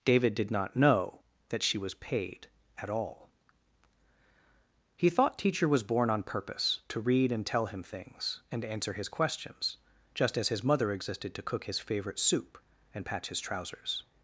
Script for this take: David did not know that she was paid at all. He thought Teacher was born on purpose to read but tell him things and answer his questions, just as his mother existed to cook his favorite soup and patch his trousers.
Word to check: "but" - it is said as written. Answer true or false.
false